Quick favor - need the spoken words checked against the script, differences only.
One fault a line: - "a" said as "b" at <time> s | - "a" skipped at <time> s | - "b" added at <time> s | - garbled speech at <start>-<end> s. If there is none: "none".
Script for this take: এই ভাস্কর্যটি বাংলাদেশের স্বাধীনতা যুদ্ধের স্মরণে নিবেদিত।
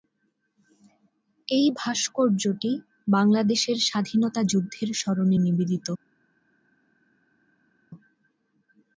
none